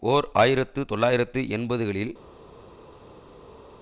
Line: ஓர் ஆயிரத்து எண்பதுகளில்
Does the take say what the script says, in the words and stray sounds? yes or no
no